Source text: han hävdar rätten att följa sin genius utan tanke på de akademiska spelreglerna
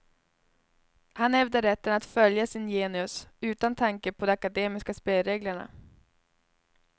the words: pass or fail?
pass